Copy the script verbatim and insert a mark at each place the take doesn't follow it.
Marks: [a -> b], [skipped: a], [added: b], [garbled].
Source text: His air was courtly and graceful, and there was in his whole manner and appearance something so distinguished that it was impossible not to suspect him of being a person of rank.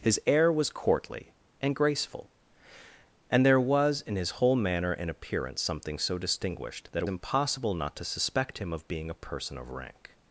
His air was courtly and graceful, and there was in his whole manner and appearance something so distinguished that it [skipped: was] impossible not to suspect him of being a person of rank.